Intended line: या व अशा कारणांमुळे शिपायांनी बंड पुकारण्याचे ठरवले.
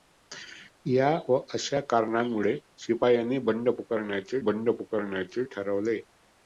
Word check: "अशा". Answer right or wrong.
right